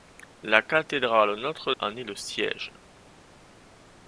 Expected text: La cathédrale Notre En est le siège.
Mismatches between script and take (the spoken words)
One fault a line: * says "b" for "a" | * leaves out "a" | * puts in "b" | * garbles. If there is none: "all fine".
all fine